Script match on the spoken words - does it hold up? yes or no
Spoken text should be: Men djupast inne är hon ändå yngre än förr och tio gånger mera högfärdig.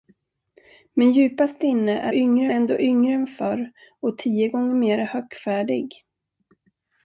no